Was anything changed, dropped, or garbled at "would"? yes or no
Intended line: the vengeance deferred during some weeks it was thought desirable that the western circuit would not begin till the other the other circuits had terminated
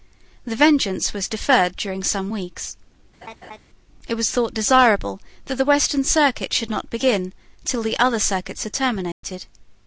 yes